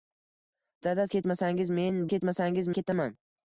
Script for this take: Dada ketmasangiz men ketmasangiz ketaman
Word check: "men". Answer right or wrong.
right